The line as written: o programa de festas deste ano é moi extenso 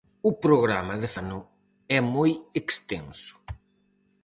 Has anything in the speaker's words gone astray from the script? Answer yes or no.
yes